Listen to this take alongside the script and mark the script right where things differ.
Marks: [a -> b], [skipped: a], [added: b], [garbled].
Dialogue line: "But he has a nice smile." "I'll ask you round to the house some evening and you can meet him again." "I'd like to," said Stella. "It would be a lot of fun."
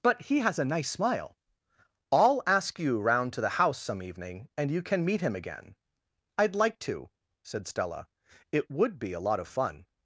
"But he has a nice smile." "I'll ask you round to the house some evening and you can meet him again." "I'd like to," said Stella. "It would be a lot of fun."